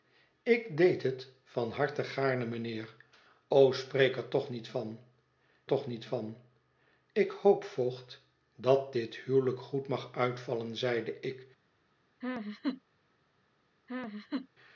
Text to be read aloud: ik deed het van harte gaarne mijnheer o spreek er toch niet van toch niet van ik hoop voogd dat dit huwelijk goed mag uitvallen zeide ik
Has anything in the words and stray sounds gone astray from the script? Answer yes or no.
yes